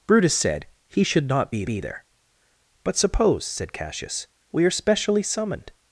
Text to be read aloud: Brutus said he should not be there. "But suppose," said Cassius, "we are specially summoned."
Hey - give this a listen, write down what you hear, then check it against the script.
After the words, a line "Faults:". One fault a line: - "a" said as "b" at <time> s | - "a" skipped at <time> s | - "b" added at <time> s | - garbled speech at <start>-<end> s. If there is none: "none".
Brutus said he should not be be there. "But suppose," said Cassius, "we are specially summoned."
Faults:
- "be" added at 1.7 s